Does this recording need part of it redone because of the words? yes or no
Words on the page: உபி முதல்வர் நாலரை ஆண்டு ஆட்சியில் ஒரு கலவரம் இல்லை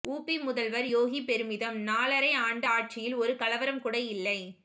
yes